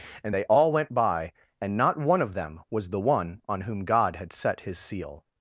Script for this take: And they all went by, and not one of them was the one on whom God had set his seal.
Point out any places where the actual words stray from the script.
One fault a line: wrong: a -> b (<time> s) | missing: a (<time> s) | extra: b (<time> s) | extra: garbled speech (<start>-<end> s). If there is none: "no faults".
no faults